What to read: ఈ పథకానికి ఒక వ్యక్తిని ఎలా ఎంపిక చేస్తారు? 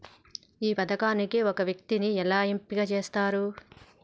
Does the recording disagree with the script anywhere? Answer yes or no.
no